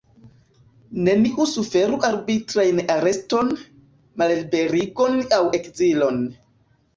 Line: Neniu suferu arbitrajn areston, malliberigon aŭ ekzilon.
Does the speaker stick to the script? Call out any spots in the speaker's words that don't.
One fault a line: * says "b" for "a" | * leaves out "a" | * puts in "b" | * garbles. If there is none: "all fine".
all fine